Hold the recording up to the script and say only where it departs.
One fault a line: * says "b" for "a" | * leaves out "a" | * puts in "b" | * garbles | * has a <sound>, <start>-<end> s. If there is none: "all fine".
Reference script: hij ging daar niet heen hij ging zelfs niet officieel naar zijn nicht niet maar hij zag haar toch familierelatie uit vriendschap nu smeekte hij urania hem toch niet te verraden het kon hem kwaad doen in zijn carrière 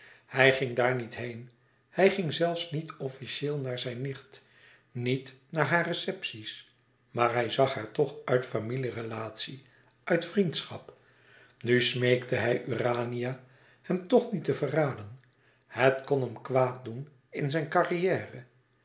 * puts in "naar hare receptie's"
* puts in "uit"